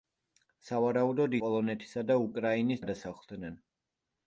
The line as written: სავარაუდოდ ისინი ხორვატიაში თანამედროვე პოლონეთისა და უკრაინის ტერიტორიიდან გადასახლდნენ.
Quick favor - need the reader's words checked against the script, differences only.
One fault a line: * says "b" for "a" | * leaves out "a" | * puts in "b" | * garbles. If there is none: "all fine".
* leaves out "ისინი ხორვატიაში თანამედროვე"
* leaves out "ტერიტორიიდან"